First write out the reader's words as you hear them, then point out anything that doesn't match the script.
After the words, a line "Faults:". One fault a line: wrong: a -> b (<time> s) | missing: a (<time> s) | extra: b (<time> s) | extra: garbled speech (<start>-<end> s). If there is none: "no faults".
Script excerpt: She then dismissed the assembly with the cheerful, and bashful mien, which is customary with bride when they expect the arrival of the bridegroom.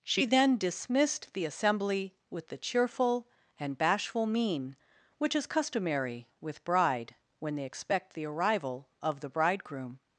She then dismissed the assembly with the cheerful, and bashful mien, which is customary with bride when they expect the arrival of the bridegroom.
Faults:
no faults